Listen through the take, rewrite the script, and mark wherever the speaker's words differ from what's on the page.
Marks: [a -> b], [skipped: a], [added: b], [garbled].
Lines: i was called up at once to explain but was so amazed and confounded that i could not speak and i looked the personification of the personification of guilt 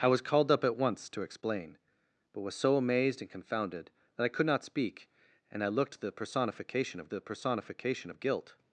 i was called up at once to explain but was so amazed and confounded that i could not speak and i looked the personification of the personification of guilt